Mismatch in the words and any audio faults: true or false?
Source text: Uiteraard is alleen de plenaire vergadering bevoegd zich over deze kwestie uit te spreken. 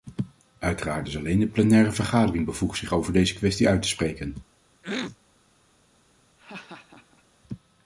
true